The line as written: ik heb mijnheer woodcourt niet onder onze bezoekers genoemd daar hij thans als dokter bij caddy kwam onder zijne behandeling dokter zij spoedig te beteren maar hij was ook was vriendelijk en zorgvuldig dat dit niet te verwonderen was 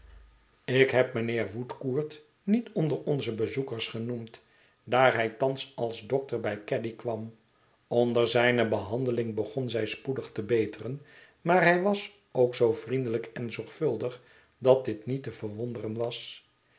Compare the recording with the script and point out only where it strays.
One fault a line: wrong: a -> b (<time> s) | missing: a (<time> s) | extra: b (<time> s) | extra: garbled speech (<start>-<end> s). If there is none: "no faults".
wrong: dokter -> begon (9.3 s)
wrong: was -> zoo (12.6 s)